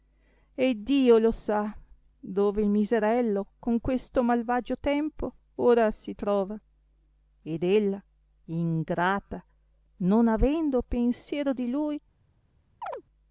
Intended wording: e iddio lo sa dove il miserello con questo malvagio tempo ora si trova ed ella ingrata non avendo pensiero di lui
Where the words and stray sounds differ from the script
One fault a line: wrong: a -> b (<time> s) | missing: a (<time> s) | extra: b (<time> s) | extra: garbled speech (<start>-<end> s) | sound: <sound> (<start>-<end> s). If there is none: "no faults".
sound: chirp (12.8-13.0 s)